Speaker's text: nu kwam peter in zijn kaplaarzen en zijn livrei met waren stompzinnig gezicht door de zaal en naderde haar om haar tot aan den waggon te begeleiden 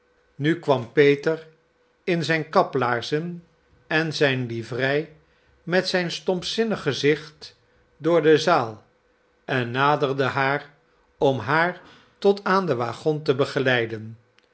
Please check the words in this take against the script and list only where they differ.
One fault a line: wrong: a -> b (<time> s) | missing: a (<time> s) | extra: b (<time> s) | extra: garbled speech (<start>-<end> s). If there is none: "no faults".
wrong: waren -> zijn (5.9 s)